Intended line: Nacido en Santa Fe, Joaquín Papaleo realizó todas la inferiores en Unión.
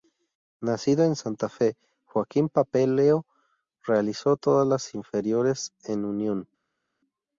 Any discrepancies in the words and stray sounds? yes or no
yes